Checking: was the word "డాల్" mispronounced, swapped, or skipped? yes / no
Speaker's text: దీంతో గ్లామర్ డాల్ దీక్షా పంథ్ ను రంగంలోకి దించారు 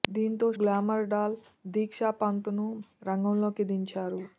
no